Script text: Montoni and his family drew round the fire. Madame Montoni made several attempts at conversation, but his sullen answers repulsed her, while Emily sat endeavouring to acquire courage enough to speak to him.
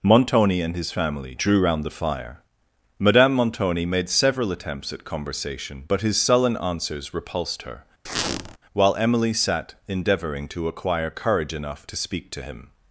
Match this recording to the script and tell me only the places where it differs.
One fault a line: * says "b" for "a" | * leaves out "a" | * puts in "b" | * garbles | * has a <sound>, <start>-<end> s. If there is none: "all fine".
* has a squeak, 8.1-8.6 s